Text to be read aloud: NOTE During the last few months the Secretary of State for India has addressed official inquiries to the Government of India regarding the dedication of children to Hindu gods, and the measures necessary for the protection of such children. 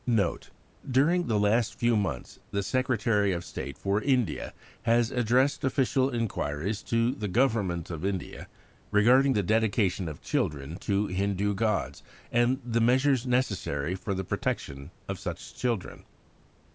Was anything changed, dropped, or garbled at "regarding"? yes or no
no